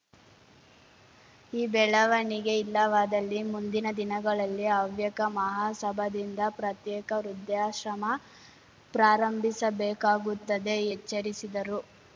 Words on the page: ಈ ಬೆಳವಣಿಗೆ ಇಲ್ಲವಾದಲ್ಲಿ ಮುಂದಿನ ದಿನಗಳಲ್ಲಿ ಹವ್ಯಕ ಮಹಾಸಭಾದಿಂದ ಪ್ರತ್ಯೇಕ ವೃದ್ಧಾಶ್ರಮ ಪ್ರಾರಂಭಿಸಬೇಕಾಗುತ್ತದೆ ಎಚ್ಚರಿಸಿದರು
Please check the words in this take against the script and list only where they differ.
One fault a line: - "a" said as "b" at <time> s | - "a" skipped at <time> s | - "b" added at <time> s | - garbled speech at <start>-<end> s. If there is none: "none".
none